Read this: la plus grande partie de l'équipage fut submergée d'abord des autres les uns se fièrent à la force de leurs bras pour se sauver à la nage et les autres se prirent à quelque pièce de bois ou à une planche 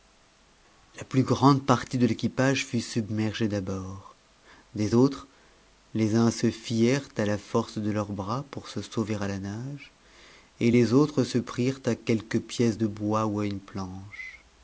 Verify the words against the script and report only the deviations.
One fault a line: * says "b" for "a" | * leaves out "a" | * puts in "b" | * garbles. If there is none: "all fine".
all fine